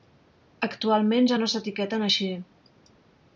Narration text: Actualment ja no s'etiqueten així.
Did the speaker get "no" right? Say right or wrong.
right